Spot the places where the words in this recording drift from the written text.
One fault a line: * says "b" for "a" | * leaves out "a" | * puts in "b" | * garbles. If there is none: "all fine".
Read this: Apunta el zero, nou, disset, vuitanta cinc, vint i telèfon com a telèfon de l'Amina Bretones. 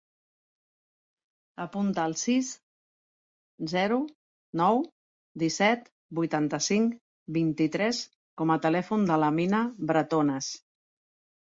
* puts in "sis"
* says "tres" for "telèfon"